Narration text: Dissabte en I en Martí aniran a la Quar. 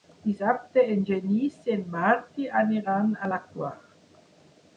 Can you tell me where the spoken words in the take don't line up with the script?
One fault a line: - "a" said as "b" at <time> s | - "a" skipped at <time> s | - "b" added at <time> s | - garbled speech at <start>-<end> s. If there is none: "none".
- "Genís" added at 1.1 s